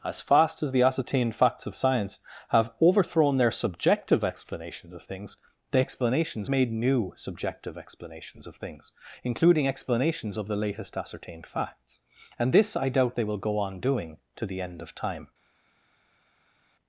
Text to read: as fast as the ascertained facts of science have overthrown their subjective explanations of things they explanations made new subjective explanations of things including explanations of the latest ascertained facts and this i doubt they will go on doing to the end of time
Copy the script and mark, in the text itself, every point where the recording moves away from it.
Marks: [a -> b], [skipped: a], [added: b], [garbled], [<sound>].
as fast as the ascertained facts of science have overthrown their subjective explanations of things they explanations made new subjective explanations of things including explanations of the latest ascertained facts and this i doubt they will go on doing to the end of time